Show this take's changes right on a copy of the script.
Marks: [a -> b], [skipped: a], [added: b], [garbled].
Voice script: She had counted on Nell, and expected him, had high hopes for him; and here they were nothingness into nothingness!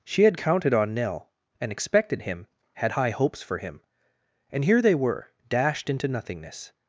She had counted on Nell, and expected him, had high hopes for him; and here they were [nothingness -> dashed] into nothingness!